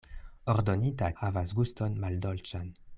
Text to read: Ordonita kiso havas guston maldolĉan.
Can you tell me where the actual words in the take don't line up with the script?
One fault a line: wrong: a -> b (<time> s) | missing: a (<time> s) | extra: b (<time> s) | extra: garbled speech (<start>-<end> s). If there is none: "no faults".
missing: kiso (1.1 s)